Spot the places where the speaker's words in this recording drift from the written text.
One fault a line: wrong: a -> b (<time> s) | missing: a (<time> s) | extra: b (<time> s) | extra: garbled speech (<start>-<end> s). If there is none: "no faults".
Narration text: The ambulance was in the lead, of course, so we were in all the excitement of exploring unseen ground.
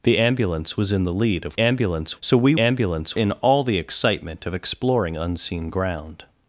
wrong: course -> ambulance (1.6 s)
wrong: were -> ambulance (2.6 s)